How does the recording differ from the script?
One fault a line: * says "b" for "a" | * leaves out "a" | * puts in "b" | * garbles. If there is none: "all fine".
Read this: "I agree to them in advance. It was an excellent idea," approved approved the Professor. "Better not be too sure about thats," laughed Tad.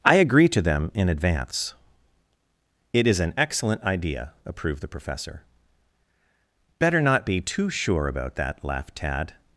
* says "is" for "was"
* leaves out "approved"
* says "that" for "thats"